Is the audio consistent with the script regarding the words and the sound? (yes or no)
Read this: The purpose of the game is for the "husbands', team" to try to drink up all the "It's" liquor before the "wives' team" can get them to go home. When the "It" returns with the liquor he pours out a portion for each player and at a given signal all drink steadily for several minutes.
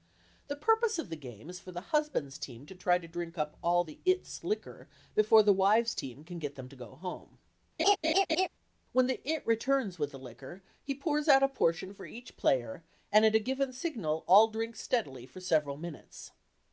no